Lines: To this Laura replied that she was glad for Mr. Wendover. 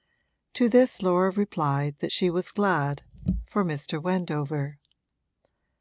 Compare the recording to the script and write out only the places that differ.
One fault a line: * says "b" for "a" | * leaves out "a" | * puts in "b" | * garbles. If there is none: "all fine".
all fine